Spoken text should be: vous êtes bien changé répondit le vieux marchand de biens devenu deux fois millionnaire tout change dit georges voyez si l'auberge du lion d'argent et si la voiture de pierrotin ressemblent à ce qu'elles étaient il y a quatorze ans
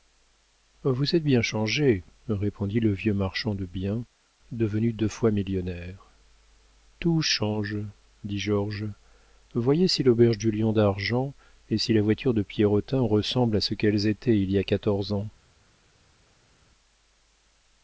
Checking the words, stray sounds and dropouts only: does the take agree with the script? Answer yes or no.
yes